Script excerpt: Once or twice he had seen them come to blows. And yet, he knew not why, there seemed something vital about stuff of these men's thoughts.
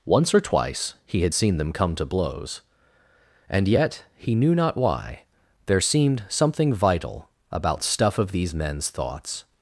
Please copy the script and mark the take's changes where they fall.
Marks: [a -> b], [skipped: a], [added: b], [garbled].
Once or twice he had seen them come to blows. And yet, he knew not why, there seemed something vital about stuff of these men's thoughts.